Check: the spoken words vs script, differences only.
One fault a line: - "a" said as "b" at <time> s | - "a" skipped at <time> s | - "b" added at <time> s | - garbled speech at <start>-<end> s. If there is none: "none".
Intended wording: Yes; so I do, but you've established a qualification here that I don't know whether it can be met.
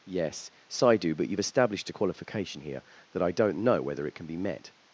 none